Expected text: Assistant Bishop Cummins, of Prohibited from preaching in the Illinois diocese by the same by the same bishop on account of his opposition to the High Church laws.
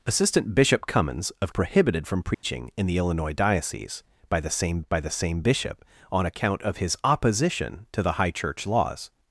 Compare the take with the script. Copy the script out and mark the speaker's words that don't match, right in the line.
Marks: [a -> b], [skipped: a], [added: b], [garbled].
Assistant Bishop Cummins, of Prohibited from preaching in the Illinois diocese by the same by the same bishop on account of his opposition to the High Church laws.